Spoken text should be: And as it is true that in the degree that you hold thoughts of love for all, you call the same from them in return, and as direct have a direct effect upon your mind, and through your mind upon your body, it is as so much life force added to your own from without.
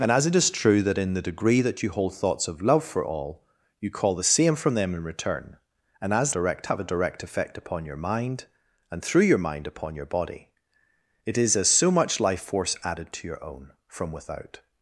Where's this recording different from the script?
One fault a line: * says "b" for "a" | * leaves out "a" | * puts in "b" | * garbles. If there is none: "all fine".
all fine